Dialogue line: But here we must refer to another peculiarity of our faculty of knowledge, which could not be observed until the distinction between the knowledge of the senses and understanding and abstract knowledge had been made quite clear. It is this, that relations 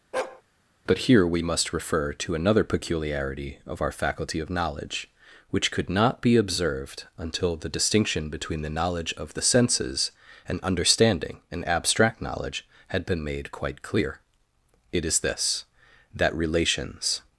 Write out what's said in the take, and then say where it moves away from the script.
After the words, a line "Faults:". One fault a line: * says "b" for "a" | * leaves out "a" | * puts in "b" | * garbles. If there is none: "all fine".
But here we must refer to another peculiarity of our faculty of knowledge, which could not be observed until the distinction between the knowledge of the senses and understanding and abstract knowledge had been made quite clear. It is this, that relations
Faults:
all fine